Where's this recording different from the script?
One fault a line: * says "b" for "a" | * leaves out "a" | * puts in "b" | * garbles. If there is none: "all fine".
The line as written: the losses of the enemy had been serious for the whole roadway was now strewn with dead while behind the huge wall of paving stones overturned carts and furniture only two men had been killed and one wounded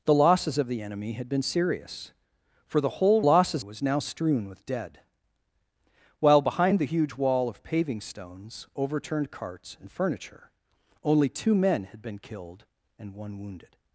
* says "losses" for "roadway"